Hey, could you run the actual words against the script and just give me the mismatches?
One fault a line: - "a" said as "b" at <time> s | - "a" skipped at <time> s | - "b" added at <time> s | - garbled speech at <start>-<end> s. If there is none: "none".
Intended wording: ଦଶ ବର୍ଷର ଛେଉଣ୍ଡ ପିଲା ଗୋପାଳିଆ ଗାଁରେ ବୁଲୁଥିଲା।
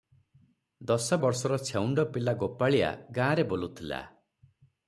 none